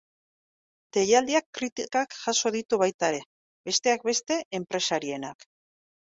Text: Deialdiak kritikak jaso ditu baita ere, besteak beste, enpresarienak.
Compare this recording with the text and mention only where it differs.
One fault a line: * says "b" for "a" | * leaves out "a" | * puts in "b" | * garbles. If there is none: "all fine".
all fine